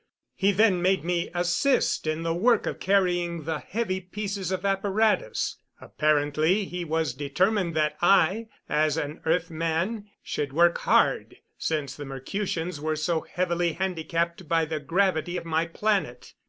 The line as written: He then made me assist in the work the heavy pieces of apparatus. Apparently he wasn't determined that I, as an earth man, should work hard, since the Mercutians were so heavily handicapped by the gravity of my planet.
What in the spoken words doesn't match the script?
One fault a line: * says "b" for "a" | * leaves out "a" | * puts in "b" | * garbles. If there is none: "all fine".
* puts in "of carrying"
* says "was" for "wasn't"